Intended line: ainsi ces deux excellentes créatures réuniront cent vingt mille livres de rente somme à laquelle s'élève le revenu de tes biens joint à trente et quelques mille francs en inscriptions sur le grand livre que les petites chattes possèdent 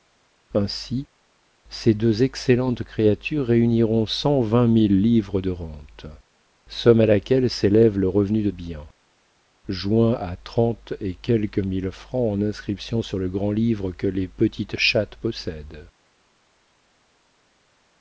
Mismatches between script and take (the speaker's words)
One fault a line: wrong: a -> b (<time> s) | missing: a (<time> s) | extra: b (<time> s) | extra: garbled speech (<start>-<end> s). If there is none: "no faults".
missing: tes (8.5 s)